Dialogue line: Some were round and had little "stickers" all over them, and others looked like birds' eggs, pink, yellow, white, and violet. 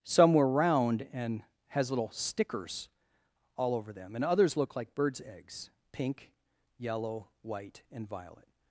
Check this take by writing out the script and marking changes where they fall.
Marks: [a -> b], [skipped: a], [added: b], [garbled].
Some were round and [had -> has] little "stickers" all over them, and others [looked -> look] like birds' eggs, pink, yellow, white, and violet.